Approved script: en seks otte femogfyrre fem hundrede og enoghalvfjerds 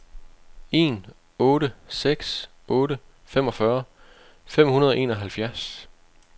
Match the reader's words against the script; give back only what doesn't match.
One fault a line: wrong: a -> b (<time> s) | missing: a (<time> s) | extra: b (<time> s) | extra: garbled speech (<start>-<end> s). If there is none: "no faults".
extra: otte (1.5 s)